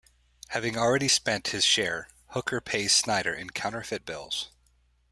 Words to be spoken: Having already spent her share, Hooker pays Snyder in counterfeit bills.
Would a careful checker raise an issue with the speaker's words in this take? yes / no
yes